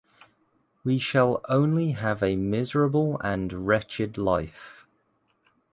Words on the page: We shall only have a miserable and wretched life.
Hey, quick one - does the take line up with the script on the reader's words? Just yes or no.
yes